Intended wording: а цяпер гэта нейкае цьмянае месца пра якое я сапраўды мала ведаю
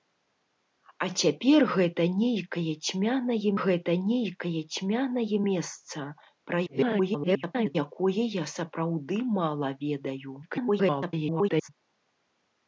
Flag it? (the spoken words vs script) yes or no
yes